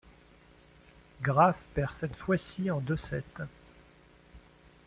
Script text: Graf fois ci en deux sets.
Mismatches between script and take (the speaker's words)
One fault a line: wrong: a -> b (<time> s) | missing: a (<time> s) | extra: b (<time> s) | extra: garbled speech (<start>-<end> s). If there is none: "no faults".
extra: perd cette (1.8 s)